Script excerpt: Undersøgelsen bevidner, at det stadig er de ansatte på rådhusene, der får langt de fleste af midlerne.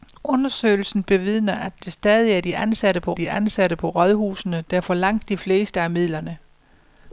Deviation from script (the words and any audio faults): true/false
true